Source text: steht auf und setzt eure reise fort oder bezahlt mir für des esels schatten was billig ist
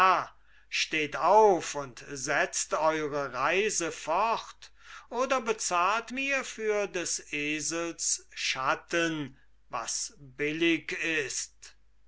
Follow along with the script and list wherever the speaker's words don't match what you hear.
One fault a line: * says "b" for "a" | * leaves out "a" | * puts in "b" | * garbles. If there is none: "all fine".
all fine